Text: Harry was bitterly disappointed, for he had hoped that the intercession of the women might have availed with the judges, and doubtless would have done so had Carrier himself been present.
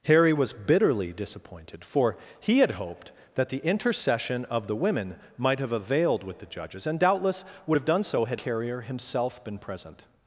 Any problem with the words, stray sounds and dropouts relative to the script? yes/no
no